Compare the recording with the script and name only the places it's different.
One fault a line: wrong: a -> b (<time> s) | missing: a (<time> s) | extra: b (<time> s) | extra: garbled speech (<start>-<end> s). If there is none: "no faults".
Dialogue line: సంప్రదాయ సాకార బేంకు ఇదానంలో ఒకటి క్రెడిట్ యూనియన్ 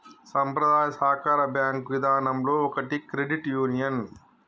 no faults